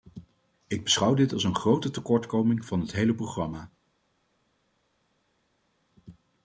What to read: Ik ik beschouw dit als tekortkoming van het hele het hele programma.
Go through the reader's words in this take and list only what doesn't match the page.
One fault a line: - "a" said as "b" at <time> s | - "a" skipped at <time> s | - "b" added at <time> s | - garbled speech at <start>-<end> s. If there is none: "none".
- "ik" skipped at 0.8 s
- "een grote" added at 1.4 s
- "het hele" skipped at 3.1 s